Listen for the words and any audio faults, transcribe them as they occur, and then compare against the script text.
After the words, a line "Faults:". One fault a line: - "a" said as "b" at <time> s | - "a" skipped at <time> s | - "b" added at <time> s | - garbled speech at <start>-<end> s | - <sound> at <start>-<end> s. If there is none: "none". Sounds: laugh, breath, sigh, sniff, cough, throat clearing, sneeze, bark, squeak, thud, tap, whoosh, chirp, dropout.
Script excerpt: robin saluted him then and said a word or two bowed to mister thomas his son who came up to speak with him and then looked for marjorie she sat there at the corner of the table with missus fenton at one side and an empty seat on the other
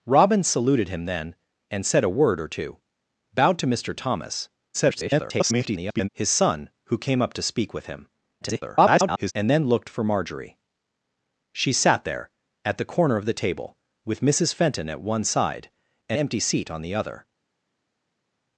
robin saluted him then and said a word or two bowed to mister thomas [garbled] his son who came up to speak with him [garbled] and then looked for marjorie she sat there at the corner of the table with missus fenton at one side and empty seat on the other
Faults:
- garbled speech at 4.7-6.1 s
- garbled speech at 8.4-9.3 s
- "an" skipped at 16.2 s